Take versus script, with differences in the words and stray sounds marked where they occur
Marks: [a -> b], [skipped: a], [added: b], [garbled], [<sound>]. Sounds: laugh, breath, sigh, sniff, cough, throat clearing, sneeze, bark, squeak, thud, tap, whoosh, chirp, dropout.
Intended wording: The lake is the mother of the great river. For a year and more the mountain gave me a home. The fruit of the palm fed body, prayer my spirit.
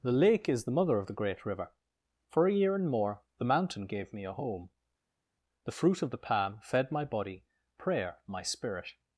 The lake is the mother of the great river. For a year and more the mountain gave me a home. The fruit of the palm fed [added: my] body, prayer my spirit.